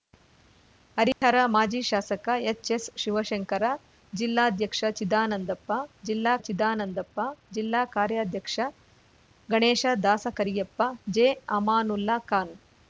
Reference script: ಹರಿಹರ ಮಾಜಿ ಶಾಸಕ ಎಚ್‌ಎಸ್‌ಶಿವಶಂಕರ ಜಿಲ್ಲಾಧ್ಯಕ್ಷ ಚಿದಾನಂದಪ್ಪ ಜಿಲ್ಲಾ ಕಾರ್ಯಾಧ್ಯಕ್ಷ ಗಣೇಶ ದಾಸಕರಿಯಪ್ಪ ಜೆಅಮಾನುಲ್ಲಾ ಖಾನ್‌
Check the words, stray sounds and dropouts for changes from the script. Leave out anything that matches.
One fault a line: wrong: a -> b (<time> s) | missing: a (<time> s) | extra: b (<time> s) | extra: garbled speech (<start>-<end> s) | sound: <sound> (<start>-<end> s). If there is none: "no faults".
sound: dropout (1.1-1.2 s)
extra: ಚಿದಾನಂದಪ್ಪ ಜಿಲ್ಲಾ (6.4 s)